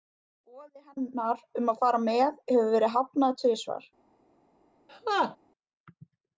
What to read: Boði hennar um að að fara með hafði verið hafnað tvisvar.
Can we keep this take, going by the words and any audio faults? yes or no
no